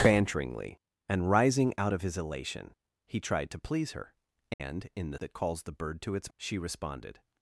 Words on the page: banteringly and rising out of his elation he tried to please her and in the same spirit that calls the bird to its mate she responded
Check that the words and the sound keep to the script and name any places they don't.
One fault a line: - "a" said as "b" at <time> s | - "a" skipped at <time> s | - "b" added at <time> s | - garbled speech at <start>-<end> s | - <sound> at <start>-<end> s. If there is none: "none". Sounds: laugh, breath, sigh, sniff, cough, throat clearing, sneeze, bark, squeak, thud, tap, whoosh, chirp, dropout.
- dropout at 4.5-4.6 s
- "same spirit" skipped at 5.2 s
- "mate" skipped at 6.3 s